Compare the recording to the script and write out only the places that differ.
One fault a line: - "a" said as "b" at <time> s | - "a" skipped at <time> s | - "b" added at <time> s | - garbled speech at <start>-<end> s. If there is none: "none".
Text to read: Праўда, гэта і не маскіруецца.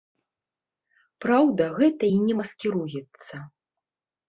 none